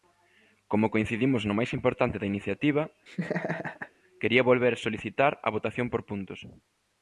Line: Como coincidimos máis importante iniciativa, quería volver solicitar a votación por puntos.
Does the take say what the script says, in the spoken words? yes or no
no